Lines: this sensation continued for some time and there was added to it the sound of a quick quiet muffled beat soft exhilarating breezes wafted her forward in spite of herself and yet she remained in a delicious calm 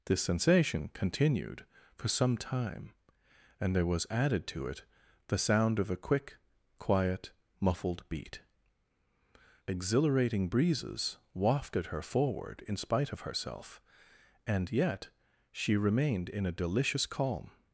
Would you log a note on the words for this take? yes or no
yes